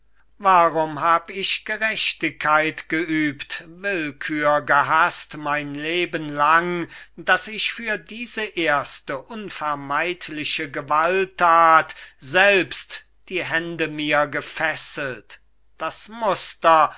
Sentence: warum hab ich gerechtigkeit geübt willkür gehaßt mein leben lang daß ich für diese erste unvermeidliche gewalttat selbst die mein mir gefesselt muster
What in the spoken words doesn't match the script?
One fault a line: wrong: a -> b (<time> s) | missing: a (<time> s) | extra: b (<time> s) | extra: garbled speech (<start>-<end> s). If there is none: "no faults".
wrong: mein -> hände (13.4 s)
extra: das (15.8 s)